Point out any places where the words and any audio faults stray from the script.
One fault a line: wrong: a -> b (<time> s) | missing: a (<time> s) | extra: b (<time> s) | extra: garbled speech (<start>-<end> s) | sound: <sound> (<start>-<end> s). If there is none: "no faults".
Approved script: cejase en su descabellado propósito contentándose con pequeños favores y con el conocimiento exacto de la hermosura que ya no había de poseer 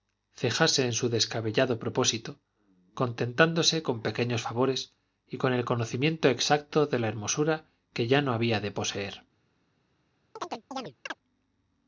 sound: chirp (10.4-11.2 s)